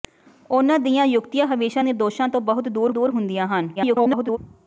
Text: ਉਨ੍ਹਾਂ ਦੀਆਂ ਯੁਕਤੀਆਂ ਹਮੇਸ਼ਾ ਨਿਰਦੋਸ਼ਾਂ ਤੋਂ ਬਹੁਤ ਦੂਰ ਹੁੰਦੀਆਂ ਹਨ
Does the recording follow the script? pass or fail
fail